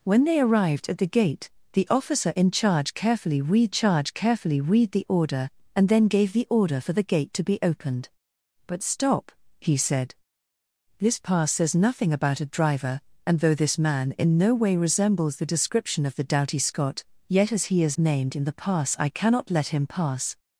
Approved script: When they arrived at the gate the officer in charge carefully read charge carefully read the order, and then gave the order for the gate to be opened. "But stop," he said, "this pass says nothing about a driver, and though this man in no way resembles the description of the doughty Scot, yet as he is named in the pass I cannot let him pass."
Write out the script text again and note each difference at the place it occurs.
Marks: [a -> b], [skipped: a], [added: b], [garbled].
When they arrived at the gate the officer in charge carefully read charge carefully read the order, and then gave the order for the gate to be opened. "But stop," he said, "this pass says nothing about a driver, and though this man in no way resembles the description of the doughty Scot, yet as he is named in the pass I cannot let him pass."